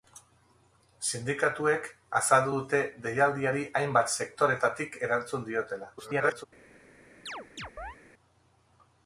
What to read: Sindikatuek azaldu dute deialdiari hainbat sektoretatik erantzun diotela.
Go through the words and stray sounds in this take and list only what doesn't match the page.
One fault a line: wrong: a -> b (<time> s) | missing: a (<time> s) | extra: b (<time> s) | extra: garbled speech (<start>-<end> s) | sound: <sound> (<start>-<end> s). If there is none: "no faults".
extra: garbled speech (6.0-6.4 s)
sound: chirp (7.3-8.0 s)